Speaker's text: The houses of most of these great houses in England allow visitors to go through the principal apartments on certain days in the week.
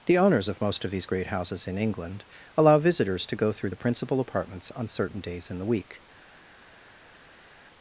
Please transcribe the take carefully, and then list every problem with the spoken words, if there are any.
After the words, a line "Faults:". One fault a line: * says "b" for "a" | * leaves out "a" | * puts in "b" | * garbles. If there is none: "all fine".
The owners of most of these great houses in England allow visitors to go through the principal apartments on certain days in the week.
Faults:
* says "owners" for "houses"